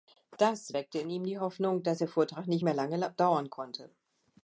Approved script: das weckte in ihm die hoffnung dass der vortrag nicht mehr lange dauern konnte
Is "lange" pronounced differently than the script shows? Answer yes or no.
no